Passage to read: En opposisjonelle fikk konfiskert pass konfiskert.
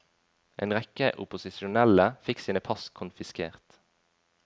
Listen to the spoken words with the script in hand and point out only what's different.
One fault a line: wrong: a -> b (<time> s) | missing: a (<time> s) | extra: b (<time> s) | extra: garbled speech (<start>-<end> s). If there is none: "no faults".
extra: rekke (0.8 s)
wrong: konfiskert -> sine (2.4 s)